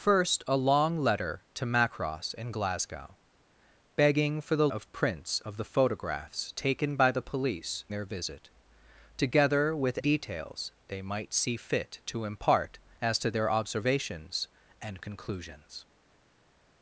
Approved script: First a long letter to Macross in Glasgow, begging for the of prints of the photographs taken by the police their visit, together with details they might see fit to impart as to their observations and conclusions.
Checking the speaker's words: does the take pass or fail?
pass